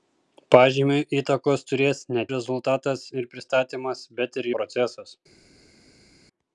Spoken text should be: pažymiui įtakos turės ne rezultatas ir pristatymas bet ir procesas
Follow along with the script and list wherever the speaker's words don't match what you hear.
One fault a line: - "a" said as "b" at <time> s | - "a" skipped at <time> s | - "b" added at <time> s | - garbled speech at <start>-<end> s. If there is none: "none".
none